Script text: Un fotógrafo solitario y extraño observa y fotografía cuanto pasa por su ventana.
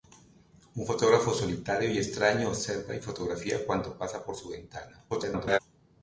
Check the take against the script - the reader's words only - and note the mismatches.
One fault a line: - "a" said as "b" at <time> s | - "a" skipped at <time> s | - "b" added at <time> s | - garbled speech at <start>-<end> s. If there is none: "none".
- garbled speech at 5.1-5.6 s